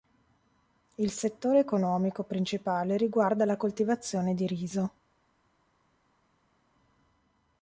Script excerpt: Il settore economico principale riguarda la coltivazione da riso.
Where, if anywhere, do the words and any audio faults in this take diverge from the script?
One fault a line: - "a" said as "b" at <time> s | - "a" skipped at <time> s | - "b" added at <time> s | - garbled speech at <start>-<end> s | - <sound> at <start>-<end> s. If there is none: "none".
- "da" said as "di" at 4.3 s